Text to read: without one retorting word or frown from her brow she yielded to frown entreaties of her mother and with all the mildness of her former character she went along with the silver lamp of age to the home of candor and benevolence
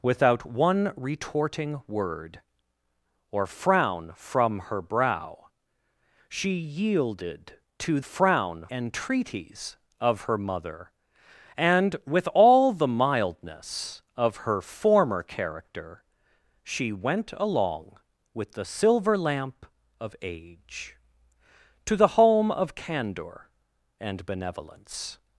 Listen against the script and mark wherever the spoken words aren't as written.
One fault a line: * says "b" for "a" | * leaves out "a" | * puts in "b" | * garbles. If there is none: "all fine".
all fine